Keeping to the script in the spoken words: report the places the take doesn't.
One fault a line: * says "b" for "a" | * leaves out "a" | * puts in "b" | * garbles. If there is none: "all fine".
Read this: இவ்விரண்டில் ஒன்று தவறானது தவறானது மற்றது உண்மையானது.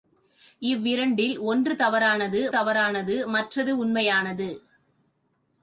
all fine